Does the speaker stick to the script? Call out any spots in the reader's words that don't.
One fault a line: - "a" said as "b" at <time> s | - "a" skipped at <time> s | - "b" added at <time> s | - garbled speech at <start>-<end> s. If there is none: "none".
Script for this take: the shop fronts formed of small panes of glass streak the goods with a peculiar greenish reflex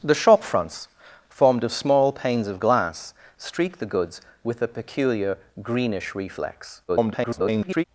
- garbled speech at 6.9-7.8 s